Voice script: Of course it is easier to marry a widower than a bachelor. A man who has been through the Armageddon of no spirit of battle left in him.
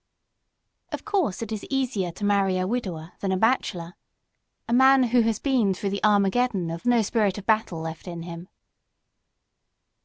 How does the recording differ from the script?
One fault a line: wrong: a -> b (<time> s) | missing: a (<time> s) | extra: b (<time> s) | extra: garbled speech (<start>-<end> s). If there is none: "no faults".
no faults